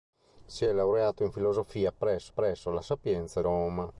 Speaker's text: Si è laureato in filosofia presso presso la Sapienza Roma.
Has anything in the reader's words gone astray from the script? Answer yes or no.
no